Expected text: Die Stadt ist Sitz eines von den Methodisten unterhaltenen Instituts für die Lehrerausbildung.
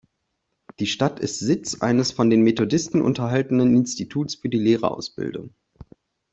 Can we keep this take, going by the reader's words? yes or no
yes